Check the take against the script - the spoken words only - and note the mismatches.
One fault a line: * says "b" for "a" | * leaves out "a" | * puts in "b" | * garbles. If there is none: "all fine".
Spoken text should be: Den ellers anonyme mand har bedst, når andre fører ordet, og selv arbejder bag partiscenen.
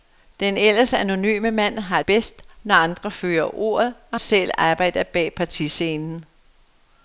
all fine